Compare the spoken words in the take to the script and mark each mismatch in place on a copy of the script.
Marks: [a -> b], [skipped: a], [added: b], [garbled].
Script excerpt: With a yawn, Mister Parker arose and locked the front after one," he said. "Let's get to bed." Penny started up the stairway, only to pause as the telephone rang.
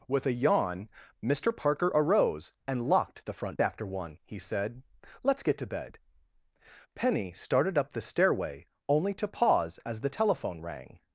With a yawn, Mister Parker arose and locked the front after one," he said. "Let's get to bed." Penny started up the stairway, only to pause as the telephone rang.